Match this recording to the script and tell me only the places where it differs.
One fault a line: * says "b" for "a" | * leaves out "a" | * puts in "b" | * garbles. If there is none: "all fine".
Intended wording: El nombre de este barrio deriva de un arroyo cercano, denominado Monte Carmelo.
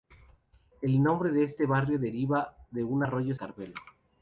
* leaves out "cercano denominado Monte"